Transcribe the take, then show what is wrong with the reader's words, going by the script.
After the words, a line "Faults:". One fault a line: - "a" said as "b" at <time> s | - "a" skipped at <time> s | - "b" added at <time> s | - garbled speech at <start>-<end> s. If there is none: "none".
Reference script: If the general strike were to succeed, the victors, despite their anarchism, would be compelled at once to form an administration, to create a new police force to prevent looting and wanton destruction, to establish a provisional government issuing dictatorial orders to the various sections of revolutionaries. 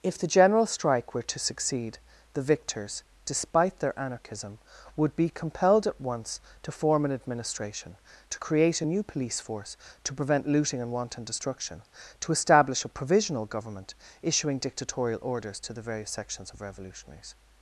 If the general strike were to succeed, the victors, despite their anarchism, would be compelled at once to form an administration, to create a new police force to prevent looting and wanton destruction, to establish a provisional government issuing dictatorial orders to the various sections of revolutionaries.
Faults:
none